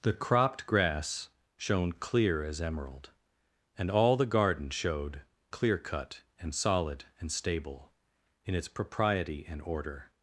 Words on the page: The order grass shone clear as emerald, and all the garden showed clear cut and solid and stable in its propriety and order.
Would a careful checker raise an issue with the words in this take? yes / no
yes